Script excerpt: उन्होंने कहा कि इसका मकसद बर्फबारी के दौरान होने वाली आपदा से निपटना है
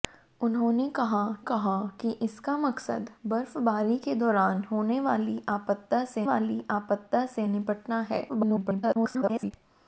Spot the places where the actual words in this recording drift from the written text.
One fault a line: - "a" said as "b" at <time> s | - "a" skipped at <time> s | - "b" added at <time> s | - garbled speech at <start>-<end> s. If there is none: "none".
- "कहा" added at 1.4 s
- "वाली आपदा से" added at 6.2 s
- garbled speech at 8.3-9.5 s